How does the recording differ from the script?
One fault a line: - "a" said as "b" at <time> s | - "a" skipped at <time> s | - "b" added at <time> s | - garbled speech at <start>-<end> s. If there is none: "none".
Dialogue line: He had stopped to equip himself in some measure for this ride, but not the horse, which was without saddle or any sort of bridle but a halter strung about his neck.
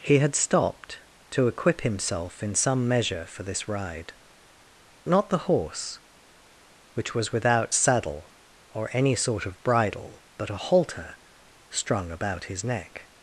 - "but" skipped at 4.1 s